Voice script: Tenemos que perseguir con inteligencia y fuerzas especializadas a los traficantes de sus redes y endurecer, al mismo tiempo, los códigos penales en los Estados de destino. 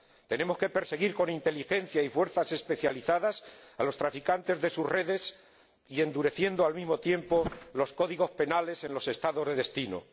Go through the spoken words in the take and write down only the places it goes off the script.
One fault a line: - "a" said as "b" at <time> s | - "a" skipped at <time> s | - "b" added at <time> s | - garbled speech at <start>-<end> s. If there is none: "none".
none